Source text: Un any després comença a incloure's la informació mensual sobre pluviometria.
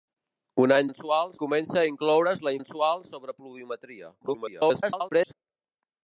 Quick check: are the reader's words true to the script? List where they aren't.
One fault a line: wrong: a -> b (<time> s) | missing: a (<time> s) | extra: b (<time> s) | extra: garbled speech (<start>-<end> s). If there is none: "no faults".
wrong: després -> mensual (0.9 s)
missing: informació (2.5 s)
extra: garbled speech (4.2-5.3 s)